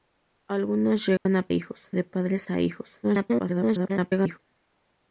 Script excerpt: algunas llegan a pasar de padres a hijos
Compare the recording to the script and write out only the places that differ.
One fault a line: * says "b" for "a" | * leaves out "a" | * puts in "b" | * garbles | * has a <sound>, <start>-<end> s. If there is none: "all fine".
* has a dropout, 1.2-1.3 s
* says "hijos" for "pasar"
* garbles